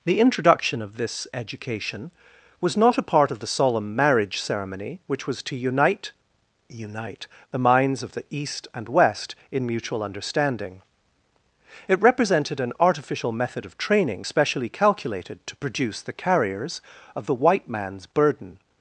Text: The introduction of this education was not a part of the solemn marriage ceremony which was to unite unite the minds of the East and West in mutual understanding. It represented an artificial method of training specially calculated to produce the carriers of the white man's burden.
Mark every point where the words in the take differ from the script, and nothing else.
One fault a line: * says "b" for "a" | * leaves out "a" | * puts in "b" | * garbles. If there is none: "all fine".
all fine